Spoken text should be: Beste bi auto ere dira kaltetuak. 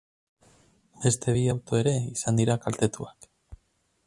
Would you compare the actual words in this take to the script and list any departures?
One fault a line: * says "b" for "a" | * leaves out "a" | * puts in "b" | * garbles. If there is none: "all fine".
* puts in "izan"